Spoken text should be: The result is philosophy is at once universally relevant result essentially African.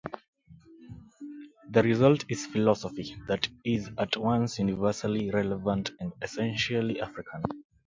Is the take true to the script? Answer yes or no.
no